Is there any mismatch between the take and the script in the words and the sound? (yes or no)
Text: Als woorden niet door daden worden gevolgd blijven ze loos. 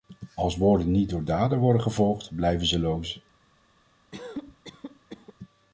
yes